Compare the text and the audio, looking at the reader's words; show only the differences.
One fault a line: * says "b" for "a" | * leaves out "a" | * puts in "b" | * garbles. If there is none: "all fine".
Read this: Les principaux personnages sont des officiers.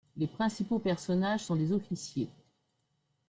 all fine